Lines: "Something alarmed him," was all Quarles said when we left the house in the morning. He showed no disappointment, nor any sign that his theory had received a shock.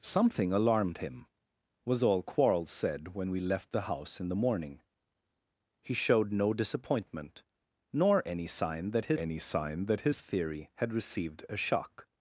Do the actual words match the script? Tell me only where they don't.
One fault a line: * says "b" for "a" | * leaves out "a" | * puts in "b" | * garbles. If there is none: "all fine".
* puts in "any sign that"